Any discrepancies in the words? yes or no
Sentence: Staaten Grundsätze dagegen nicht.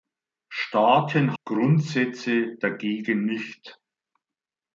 no